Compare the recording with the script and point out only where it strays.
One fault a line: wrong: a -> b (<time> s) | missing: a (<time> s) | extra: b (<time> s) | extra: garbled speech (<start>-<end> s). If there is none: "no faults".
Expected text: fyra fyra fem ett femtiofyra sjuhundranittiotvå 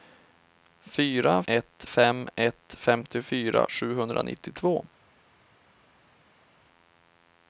wrong: fyra -> ett (1.5 s)